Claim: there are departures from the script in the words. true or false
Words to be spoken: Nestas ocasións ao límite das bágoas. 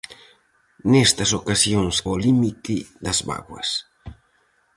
false